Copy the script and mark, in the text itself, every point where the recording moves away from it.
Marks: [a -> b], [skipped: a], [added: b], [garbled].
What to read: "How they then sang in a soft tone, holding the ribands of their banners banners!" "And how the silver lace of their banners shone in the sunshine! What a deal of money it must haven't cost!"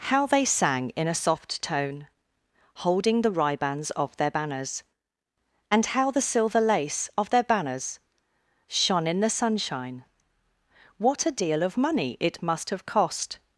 "How they [skipped: then] sang in a soft tone, holding the ribands of their banners [skipped: banners!"] "And how the silver lace of their banners shone in the sunshine! What a deal of money it must [haven't -> have] cost!"